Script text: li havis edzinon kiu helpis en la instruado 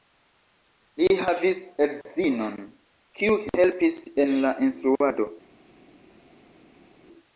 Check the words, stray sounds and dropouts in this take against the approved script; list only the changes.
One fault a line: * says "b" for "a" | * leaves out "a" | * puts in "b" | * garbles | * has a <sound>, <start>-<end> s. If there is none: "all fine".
all fine